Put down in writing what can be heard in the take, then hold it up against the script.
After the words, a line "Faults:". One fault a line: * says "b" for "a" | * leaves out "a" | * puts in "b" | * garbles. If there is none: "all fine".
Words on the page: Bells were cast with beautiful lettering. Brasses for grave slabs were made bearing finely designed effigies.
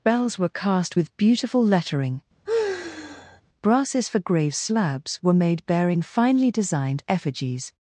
Bells were cast with beautiful lettering. Brasses for grave slabs were made bearing finely designed effigies.
Faults:
all fine